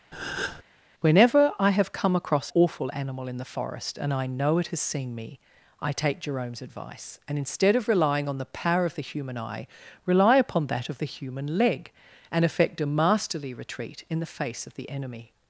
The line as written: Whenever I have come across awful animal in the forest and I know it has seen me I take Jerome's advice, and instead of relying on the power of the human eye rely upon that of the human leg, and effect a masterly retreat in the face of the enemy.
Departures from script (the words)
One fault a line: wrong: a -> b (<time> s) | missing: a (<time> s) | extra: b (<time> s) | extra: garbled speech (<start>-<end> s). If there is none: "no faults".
no faults